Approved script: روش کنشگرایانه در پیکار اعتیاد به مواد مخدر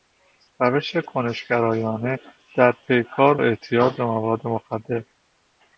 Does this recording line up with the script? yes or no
yes